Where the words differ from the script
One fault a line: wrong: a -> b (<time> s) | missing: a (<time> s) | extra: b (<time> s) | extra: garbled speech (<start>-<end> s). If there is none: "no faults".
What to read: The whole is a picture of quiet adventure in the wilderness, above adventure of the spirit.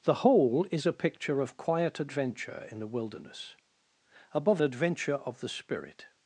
no faults